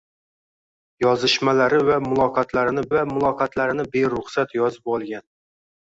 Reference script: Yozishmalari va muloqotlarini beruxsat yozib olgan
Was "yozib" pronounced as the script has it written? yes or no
yes